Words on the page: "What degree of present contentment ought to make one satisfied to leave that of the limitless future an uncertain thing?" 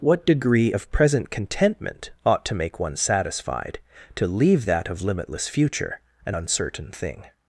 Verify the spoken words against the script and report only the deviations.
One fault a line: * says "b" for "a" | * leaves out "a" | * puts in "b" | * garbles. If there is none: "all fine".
* leaves out "the"